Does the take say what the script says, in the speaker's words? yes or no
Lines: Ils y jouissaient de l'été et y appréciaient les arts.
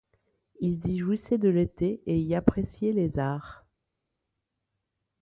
yes